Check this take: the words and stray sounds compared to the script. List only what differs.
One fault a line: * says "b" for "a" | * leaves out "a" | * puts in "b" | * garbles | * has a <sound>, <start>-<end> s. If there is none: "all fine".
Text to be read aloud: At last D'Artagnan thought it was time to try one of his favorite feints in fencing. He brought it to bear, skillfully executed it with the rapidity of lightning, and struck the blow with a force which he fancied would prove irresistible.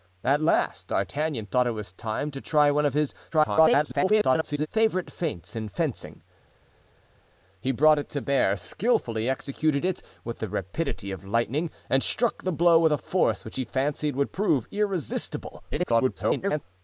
* garbles
* garbles